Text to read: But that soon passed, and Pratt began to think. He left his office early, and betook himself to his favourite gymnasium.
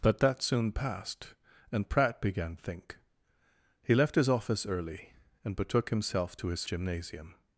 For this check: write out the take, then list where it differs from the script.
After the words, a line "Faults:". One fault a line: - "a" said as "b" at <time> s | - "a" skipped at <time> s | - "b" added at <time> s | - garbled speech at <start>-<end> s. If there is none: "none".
But that soon passed, and Pratt began think. He left his office early, and betook himself to his gymnasium.
Faults:
- "to" skipped at 2.5 s
- "favourite" skipped at 6.6 s